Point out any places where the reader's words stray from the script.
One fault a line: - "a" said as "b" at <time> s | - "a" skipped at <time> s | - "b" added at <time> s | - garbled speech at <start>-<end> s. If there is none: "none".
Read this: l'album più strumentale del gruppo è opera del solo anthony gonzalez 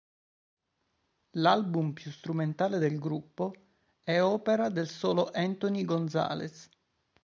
none